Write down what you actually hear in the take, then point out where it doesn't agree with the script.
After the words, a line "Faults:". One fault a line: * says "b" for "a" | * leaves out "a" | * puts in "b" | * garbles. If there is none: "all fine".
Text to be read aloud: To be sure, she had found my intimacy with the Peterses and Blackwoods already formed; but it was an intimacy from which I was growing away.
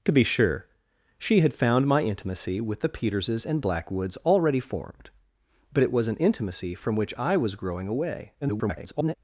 To be sure, she had found my intimacy with the Peterses and Blackwoods already formed; but it was an intimacy from which I was growing away. [garbled]
Faults:
* garbles